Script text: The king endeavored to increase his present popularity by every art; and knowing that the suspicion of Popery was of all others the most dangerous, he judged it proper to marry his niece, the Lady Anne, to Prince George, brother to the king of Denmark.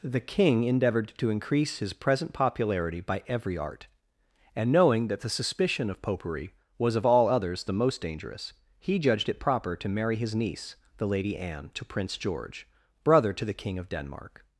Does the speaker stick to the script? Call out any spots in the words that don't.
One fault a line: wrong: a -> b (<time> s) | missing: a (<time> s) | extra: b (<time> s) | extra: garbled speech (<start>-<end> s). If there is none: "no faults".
no faults